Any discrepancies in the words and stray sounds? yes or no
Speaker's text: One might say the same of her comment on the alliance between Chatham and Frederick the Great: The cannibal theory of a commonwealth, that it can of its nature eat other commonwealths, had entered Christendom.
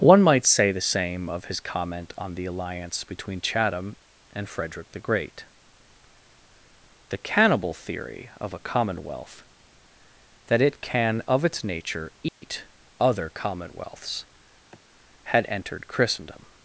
yes